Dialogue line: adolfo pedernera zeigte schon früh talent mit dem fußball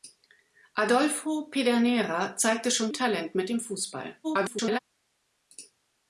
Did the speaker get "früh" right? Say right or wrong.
wrong